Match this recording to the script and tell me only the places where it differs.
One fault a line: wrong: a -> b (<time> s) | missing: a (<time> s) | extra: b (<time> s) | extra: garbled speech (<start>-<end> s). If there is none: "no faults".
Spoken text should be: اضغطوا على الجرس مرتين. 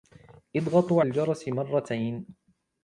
missing: على (1.0 s)